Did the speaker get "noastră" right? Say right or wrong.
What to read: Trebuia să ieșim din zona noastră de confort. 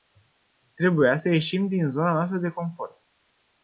right